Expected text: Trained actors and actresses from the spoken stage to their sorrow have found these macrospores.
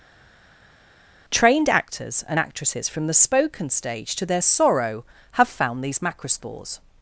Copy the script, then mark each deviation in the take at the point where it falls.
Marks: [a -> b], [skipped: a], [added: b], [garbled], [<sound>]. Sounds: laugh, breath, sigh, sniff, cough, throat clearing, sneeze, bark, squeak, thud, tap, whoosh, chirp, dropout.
Trained actors and actresses from the spoken stage to their sorrow have found these macrospores.